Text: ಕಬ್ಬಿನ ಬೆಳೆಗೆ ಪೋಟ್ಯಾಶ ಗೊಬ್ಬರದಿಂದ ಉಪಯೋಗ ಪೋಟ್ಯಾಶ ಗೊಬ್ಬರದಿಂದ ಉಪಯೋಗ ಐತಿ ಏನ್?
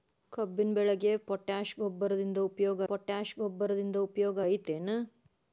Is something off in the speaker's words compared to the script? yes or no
no